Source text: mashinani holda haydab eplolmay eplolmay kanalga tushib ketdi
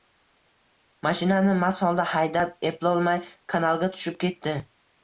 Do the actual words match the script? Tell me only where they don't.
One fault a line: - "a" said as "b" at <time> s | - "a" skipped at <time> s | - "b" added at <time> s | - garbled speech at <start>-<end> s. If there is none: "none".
- "mast" added at 1.6 s
- "eplolmay" skipped at 3.2 s